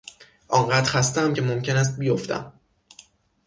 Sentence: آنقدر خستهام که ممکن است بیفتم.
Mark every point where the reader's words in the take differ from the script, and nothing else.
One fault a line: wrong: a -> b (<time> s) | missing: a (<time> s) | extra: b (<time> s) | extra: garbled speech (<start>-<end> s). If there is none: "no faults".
no faults